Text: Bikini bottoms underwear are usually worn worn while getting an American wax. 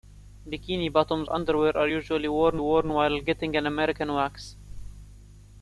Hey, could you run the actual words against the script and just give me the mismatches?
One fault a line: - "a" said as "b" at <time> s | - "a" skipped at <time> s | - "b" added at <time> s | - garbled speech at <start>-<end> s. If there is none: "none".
none